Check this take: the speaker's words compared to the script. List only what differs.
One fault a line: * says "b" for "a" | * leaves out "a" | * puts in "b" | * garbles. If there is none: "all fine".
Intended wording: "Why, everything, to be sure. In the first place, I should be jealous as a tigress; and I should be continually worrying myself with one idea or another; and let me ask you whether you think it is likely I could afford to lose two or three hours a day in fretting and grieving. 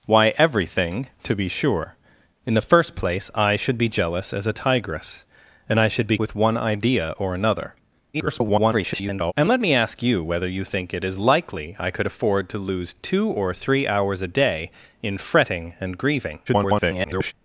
* leaves out "continually worrying myself"
* garbles
* garbles